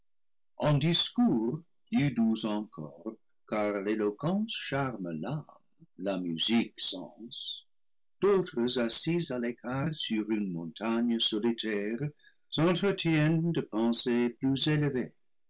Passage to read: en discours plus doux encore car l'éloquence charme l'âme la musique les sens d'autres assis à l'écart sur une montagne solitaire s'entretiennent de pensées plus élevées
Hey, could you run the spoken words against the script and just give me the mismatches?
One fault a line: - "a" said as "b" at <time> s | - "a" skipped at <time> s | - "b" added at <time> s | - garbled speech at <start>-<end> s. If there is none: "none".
- "les" skipped at 6.7 s